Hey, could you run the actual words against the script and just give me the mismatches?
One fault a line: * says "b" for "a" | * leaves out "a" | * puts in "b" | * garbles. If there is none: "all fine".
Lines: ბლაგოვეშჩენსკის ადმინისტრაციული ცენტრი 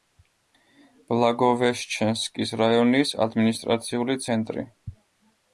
* puts in "რაიონის"